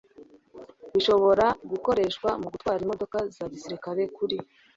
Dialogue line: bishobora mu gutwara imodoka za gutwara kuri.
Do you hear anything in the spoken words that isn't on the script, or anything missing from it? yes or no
yes